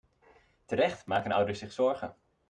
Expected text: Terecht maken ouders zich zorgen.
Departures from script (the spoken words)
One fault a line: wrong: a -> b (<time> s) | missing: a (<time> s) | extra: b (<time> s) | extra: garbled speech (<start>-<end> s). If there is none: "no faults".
no faults